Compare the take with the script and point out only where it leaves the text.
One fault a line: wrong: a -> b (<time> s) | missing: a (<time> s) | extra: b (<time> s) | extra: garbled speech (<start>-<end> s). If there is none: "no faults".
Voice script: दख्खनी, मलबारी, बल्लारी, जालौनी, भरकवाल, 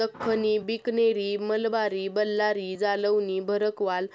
extra: बिकनेरी (0.7 s)